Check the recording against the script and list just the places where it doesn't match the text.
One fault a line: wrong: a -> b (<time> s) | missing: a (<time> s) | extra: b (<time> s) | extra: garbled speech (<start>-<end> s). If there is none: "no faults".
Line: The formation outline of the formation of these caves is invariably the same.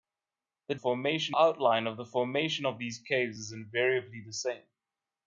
no faults